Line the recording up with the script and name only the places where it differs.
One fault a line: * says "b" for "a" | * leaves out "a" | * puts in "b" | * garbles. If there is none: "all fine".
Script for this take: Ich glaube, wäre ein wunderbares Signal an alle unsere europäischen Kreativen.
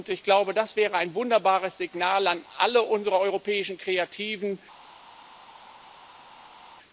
* puts in "das"